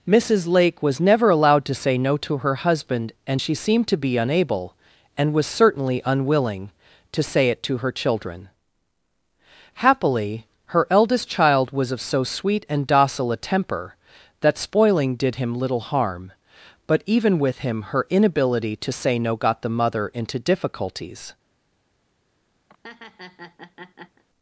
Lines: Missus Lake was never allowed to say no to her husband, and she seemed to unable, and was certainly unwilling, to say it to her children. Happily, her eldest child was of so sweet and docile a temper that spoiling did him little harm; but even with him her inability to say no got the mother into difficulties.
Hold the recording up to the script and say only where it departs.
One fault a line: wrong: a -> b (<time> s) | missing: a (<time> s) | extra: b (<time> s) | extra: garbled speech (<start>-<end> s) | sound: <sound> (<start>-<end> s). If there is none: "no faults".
extra: be (4.0 s)
sound: laugh (22.7-24.2 s)